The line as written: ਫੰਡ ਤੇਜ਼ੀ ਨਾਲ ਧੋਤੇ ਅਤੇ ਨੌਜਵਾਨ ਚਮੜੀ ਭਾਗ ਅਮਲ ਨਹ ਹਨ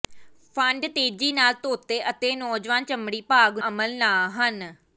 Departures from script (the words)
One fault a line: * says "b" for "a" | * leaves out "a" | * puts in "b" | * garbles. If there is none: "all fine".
all fine